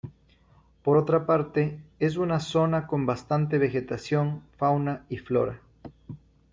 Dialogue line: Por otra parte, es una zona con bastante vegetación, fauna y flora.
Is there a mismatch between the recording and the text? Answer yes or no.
no